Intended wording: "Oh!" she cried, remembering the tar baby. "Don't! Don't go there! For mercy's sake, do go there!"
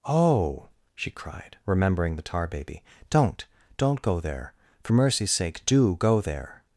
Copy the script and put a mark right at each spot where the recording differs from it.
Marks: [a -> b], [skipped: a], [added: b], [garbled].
"Oh!" she cried, remembering the tar baby. "Don't! Don't go there! For mercy's sake, do go there!"